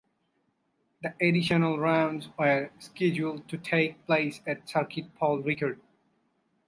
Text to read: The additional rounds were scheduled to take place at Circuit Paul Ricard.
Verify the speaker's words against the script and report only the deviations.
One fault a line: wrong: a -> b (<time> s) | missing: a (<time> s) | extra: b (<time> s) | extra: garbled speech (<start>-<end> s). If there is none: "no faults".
no faults